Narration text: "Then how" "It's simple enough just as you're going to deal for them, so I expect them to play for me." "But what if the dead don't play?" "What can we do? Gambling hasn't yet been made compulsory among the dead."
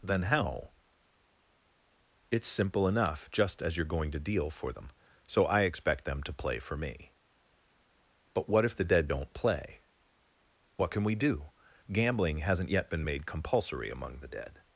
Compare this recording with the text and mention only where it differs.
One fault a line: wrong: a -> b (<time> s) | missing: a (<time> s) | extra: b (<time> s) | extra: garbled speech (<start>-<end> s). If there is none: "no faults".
no faults